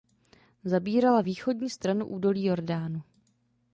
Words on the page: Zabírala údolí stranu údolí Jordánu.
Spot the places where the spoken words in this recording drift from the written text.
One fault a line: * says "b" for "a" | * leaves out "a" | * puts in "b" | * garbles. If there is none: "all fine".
* says "východní" for "údolí"